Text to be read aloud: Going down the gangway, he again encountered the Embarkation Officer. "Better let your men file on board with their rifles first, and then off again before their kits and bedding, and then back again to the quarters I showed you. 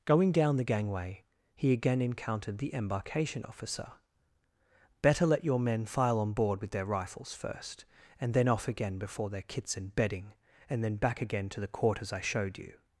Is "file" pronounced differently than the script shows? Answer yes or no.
no